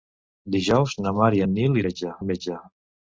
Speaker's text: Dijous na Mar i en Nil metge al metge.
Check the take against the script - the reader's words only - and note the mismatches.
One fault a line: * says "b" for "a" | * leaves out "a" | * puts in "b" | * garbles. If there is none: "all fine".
all fine